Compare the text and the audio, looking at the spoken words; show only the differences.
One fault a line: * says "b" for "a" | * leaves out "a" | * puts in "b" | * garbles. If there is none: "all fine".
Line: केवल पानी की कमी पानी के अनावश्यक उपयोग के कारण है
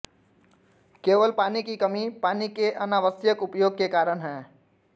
all fine